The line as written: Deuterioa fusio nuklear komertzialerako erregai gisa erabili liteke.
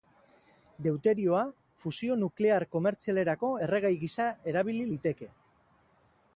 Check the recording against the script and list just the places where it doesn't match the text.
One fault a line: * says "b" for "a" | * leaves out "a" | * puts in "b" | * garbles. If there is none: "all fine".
all fine